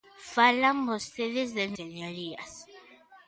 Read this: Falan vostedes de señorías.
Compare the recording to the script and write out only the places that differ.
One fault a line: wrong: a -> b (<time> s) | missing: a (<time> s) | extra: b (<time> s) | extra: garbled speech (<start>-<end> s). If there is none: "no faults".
no faults